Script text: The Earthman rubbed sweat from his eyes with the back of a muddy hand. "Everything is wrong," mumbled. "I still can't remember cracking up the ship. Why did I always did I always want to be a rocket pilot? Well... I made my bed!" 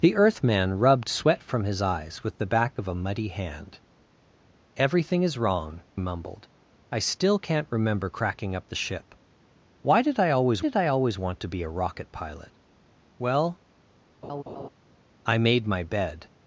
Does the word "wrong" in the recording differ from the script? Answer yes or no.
no